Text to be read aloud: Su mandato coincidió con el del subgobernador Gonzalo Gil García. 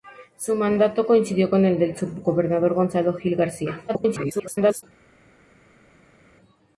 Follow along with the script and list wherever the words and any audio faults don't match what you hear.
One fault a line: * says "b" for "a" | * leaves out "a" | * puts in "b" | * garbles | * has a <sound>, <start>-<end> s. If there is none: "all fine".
* garbles